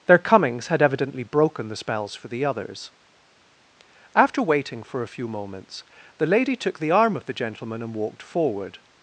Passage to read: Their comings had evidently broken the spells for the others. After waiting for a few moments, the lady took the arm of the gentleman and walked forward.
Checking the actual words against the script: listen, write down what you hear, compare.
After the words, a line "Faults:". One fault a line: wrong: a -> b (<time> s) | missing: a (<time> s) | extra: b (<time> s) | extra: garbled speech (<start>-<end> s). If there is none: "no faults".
Their comings had evidently broken the spells for the others. After waiting for a few moments, the lady took the arm of the gentleman and walked forward.
Faults:
no faults